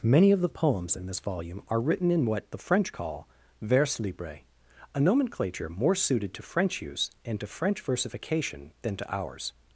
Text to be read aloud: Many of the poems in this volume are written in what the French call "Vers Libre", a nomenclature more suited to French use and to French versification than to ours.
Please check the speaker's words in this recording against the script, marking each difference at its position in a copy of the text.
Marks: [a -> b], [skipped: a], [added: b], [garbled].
Many of the poems in this volume are written in what the French call "Vers Libre", a nomenclature more suited to French use and to French versification than to ours.